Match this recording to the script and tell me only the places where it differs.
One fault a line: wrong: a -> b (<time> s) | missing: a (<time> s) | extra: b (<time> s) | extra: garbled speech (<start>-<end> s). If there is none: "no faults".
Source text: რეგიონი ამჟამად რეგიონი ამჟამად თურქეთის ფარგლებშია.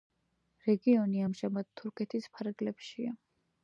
missing: რეგიონი ამჟამად (1.7 s)